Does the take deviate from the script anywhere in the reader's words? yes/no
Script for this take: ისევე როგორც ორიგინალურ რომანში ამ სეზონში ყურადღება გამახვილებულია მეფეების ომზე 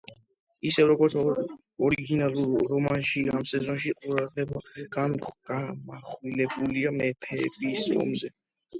no